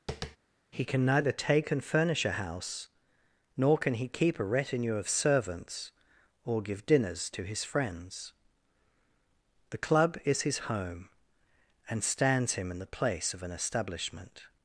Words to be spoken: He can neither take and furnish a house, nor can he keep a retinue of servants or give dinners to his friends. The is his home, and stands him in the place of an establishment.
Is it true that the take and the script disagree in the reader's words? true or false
true